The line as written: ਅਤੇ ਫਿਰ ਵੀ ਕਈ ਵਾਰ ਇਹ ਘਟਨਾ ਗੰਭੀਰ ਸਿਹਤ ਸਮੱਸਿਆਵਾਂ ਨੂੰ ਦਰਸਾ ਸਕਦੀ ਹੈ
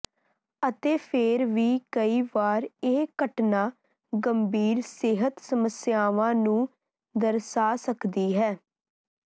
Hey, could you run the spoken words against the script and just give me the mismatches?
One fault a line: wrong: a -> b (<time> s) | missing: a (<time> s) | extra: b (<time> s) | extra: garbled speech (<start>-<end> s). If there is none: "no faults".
no faults